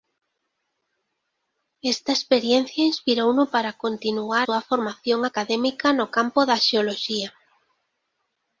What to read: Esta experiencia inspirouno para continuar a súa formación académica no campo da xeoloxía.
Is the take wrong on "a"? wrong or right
wrong